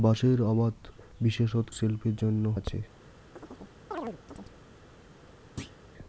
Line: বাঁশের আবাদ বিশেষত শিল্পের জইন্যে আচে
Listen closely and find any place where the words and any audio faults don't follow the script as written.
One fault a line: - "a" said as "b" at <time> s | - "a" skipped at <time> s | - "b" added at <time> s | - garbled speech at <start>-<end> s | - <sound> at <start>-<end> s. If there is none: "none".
- chirp at 3.4-4.6 s
- thud at 5.6-5.8 s